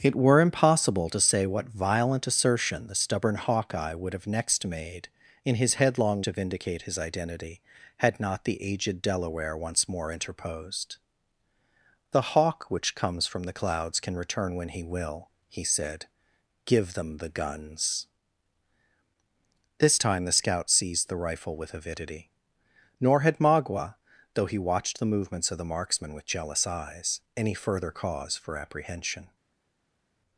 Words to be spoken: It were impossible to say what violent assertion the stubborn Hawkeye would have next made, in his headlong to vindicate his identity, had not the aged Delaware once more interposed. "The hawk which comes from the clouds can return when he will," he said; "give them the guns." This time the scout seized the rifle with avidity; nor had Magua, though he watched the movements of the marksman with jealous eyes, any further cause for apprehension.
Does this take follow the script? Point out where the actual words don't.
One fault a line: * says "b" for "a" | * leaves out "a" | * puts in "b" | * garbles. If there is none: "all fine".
all fine